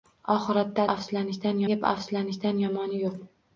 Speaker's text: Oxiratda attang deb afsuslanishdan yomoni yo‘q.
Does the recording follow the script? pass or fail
fail